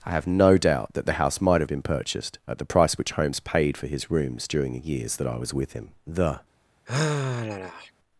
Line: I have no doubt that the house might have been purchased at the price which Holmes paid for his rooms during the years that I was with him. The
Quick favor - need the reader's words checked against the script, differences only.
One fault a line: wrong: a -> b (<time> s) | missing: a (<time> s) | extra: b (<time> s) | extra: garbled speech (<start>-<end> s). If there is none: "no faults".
no faults